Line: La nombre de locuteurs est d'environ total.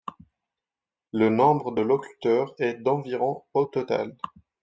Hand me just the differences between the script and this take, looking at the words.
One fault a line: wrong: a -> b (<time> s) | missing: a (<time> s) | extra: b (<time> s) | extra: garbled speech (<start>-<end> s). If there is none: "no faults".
wrong: La -> Le (1.1 s)
extra: au (3.5 s)